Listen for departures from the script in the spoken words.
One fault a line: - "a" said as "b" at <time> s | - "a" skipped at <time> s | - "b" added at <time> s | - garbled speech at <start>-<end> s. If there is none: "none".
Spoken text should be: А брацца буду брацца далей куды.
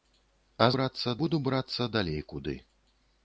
none